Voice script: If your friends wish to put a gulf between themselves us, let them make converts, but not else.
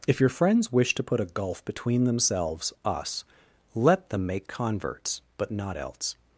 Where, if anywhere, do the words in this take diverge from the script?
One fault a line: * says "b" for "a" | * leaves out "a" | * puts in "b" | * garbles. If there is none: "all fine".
all fine